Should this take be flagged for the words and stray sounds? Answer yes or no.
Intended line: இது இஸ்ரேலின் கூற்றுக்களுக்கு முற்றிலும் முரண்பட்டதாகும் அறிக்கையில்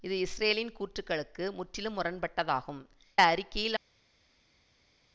no